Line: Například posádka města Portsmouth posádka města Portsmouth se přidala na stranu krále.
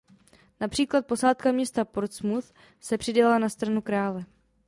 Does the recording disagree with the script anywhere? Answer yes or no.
yes